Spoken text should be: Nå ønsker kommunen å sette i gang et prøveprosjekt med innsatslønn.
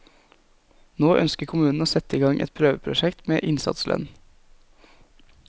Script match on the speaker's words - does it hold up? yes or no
yes